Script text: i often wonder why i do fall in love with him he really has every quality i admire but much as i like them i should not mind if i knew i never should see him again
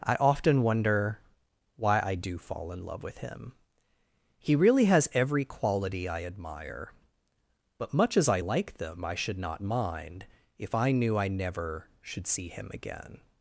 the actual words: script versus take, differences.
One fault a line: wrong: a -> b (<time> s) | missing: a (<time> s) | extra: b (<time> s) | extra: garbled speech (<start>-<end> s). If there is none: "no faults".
no faults